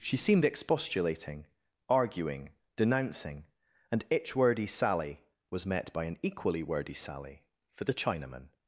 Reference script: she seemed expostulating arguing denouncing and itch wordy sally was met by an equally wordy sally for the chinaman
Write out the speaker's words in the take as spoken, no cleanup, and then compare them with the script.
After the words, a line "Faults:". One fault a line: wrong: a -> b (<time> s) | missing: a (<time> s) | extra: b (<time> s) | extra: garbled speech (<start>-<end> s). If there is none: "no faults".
she seemed expostulating arguing denouncing and itch wordy sally was met by an equally wordy sally for the chinaman
Faults:
no faults